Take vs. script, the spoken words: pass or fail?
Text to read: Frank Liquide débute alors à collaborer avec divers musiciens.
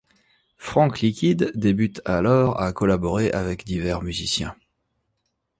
pass